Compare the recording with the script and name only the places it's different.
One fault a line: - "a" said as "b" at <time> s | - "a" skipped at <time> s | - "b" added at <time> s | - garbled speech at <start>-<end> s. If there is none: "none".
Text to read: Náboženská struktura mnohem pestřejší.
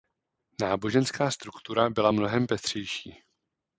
- "byla" added at 1.9 s